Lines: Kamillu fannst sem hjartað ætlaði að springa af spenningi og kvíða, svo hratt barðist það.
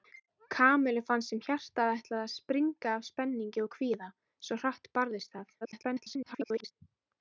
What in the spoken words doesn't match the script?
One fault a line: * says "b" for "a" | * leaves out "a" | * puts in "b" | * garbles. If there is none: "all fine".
* garbles